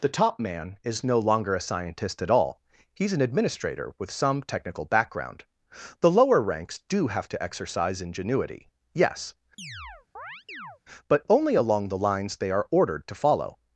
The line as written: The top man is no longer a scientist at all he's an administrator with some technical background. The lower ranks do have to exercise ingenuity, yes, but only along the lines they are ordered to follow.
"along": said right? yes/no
yes